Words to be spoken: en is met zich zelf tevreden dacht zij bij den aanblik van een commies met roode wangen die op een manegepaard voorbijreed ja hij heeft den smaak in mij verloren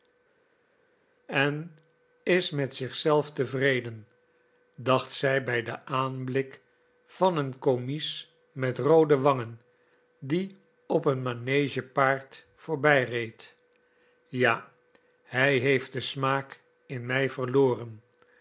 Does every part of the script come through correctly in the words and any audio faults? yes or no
yes